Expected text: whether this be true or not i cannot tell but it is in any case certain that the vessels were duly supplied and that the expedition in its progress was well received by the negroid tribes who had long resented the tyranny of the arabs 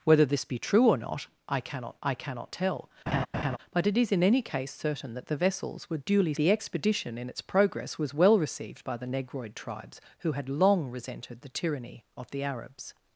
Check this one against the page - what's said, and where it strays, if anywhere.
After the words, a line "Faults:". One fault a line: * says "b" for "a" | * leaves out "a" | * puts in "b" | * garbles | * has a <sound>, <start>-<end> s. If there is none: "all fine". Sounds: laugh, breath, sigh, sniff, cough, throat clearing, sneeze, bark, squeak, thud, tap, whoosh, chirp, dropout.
whether this be true or not i cannot i cannot tell but it is in any case certain that the vessels were duly the expedition in its progress was well received by the negroid tribes who had long resented the tyranny of the arabs
Faults:
* puts in "i cannot"
* has a laugh, 3.1-3.6 s
* leaves out "supplied and that"